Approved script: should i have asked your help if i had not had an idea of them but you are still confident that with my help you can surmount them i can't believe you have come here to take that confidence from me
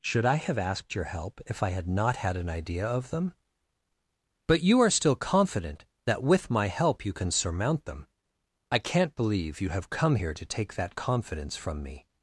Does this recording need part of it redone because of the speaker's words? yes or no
no